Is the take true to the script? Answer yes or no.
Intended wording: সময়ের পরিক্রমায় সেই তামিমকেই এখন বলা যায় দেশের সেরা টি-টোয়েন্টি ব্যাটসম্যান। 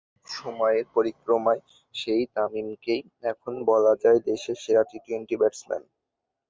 yes